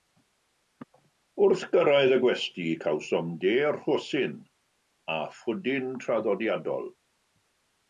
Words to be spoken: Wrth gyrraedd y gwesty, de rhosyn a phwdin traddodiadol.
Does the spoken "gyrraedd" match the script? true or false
true